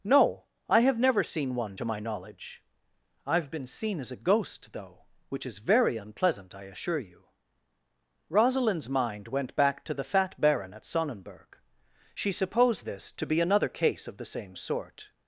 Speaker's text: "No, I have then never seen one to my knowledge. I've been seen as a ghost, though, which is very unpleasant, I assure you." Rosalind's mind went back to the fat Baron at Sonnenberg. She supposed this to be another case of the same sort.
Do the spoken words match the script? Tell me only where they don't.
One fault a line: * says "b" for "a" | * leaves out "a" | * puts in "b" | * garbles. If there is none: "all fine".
* leaves out "then"